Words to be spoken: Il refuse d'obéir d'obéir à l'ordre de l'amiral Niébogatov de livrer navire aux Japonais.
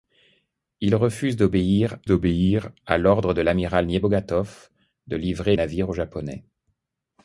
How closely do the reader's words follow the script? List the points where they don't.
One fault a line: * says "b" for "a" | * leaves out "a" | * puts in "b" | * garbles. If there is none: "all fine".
all fine